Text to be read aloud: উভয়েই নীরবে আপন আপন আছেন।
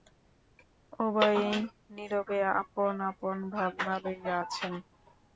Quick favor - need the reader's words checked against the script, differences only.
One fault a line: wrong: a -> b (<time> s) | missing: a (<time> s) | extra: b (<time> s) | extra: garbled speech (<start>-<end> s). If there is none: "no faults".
extra: ভাবনা লইয়া (3.5 s)